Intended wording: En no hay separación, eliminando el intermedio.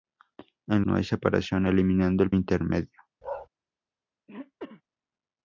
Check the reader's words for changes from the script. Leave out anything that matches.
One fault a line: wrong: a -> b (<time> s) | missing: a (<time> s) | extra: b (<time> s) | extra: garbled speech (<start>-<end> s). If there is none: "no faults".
no faults